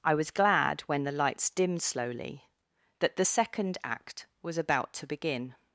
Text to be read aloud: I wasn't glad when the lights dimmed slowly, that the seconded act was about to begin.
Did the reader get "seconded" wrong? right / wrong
wrong